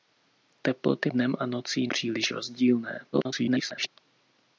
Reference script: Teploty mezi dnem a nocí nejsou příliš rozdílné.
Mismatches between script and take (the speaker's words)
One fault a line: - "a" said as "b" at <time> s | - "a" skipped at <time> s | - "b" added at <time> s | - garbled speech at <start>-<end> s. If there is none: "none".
- "mezi" skipped at 1.1 s
- "nejsou" skipped at 1.9 s
- garbled speech at 3.1-3.9 s